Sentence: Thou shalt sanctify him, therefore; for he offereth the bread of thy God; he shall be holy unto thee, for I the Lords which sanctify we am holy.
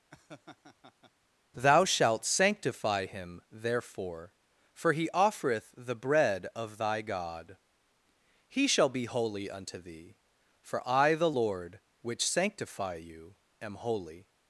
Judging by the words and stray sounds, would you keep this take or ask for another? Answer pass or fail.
fail